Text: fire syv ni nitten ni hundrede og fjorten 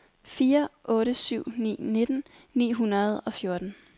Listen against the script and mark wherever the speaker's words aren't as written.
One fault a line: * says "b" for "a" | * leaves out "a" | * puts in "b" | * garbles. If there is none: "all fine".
* puts in "otte"